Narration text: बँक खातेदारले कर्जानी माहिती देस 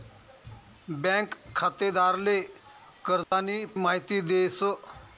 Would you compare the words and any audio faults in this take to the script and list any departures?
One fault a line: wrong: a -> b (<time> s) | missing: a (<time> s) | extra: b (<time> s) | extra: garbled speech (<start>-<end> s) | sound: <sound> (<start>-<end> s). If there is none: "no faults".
sound: dropout (3.2-3.3 s)